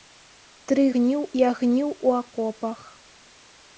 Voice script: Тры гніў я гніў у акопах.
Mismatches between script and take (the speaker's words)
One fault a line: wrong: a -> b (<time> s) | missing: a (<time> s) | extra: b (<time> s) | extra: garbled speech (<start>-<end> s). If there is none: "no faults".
no faults